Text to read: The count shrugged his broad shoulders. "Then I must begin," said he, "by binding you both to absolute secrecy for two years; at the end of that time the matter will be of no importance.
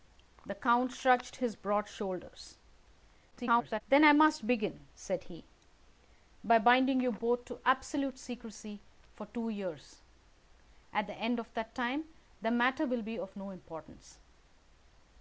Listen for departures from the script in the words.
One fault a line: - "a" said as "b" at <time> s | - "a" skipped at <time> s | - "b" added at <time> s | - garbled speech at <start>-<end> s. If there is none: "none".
- garbled speech at 3.3-3.8 s